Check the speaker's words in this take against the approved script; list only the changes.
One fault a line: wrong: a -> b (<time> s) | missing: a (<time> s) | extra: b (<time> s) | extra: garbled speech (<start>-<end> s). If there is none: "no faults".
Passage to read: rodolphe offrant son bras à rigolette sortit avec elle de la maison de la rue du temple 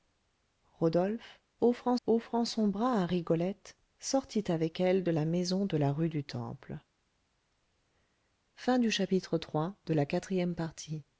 extra: offrant (2.0 s)